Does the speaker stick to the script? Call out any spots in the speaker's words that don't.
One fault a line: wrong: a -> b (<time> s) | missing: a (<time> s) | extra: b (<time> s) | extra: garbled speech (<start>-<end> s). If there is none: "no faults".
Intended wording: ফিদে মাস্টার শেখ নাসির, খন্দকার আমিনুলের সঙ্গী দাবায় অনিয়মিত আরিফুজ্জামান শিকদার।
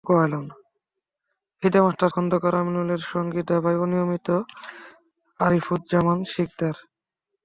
missing: শেখ নাসির (2.1 s)